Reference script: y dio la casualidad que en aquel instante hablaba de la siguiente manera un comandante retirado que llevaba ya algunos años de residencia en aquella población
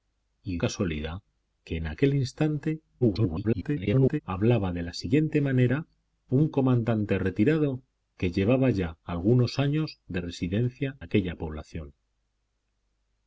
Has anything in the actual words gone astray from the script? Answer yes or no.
yes